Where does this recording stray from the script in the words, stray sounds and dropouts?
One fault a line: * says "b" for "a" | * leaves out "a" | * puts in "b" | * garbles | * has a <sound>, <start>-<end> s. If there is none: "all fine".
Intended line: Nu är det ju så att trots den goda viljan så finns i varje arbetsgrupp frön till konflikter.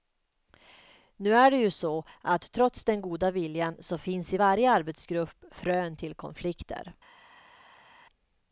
all fine